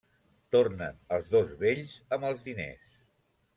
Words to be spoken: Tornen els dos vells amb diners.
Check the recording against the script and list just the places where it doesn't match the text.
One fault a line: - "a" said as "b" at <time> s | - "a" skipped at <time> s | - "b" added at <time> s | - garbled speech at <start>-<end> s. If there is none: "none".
- "els" added at 2.3 s